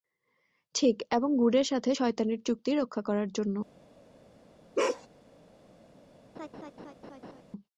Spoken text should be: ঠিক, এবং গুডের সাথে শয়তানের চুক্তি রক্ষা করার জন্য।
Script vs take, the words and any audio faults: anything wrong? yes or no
yes